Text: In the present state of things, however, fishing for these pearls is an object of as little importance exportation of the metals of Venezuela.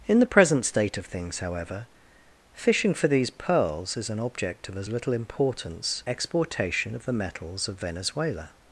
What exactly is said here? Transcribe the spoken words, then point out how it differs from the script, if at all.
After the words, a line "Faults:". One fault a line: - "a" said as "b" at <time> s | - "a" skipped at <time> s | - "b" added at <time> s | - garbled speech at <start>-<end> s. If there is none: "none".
In the present state of things, however, fishing for these pearls is an object of as little importance exportation of the metals of Venezuela.
Faults:
none